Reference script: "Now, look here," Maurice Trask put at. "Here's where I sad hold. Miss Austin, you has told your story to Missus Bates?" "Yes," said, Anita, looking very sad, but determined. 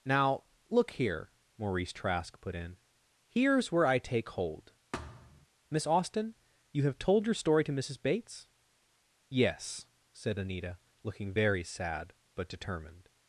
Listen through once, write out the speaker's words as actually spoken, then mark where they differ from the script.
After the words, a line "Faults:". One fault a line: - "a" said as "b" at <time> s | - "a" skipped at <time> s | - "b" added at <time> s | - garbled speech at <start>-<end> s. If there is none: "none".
"Now, look here," Maurice Trask put in. "Here's where I take hold. Miss Austin, you have told your story to Missus Bates?" "Yes," said, Anita, looking very sad, but determined.
Faults:
- "at" said as "in" at 2.5 s
- "sad" said as "take" at 4.0 s
- "has" said as "have" at 6.8 s